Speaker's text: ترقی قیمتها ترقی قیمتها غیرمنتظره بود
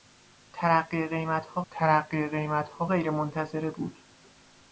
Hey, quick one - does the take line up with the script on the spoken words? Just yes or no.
yes